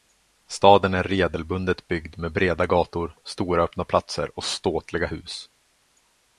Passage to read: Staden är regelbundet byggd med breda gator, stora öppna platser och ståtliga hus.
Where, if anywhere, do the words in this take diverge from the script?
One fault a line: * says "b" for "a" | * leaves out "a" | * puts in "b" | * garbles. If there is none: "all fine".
all fine